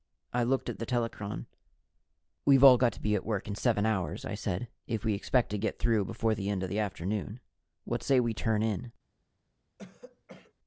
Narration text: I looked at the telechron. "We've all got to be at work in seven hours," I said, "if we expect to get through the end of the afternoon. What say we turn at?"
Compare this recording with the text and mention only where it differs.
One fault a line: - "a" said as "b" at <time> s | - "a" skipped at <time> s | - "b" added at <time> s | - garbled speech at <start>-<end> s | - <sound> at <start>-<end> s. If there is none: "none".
- "before" added at 6.0 s
- "at" said as "in" at 8.6 s
- throat clearing at 9.8-10.5 s